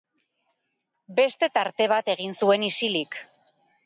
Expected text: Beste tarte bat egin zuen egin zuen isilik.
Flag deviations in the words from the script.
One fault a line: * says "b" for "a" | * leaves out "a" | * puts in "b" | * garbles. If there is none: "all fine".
* leaves out "egin zuen"